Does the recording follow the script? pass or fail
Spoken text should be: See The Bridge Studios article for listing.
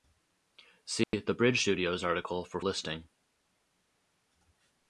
pass